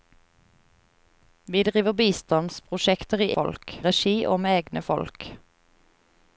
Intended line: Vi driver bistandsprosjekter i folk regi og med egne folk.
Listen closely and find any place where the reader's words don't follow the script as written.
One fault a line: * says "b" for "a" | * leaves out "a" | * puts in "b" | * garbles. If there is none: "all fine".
all fine